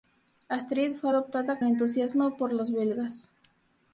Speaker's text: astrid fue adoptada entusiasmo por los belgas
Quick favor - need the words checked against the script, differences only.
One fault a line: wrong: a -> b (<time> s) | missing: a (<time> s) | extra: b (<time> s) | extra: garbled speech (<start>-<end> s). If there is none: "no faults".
no faults